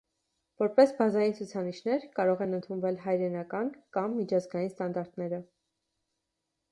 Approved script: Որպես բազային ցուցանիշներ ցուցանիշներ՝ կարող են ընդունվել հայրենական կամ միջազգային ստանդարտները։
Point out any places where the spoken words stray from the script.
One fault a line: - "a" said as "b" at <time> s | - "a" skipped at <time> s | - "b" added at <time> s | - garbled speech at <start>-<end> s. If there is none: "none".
- "ցուցանիշներ" skipped at 2.1 s